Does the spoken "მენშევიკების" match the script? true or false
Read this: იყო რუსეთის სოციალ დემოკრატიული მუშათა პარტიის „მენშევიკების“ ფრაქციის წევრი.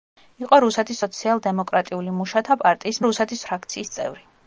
false